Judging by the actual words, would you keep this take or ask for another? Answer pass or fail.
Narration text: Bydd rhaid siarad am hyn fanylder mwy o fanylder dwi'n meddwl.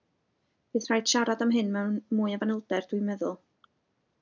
fail